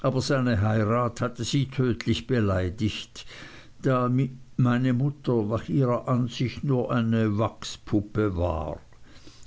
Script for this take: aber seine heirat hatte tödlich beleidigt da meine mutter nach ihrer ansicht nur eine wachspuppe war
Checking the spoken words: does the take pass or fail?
fail